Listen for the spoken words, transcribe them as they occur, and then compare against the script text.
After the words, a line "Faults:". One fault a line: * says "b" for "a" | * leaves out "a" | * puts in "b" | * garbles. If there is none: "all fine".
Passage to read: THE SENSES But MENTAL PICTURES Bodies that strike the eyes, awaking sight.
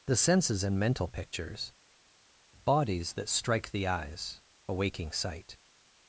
THE SENSES AND MENTAL PICTURES Bodies that strike the eyes, awaking sight.
Faults:
* says "AND" for "But"